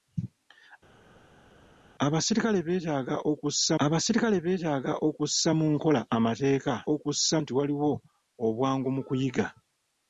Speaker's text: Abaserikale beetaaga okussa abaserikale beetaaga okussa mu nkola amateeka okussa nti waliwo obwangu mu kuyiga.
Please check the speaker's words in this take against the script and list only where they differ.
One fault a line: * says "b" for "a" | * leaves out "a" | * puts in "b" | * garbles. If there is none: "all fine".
all fine